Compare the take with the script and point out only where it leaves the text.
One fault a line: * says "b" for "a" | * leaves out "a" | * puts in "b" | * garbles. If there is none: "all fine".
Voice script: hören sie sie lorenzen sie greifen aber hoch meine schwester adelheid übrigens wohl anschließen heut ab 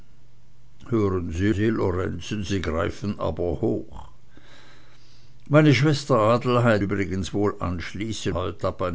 all fine